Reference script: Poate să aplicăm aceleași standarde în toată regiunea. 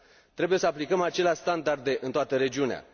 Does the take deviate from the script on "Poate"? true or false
true